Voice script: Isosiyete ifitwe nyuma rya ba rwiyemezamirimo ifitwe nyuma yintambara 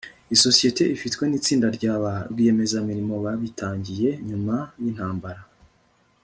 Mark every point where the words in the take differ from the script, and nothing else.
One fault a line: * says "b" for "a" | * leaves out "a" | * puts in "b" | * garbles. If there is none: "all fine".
* says "nitsinda" for "nyuma"
* says "babitangiye" for "ifitwe"